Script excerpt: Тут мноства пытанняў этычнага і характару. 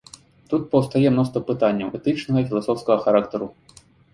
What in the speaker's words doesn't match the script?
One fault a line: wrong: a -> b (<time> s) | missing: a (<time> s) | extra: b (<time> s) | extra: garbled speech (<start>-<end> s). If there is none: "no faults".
extra: паўстае (0.7 s)
extra: філасофскага (2.5 s)